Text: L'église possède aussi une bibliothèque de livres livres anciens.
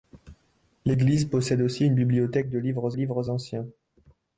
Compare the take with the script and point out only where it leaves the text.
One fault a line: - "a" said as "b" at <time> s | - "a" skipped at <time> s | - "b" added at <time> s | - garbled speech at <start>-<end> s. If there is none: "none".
none